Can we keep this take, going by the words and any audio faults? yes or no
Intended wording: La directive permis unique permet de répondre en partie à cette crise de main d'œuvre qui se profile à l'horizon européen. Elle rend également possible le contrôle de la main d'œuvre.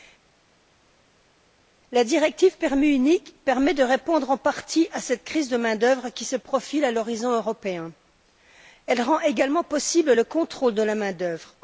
yes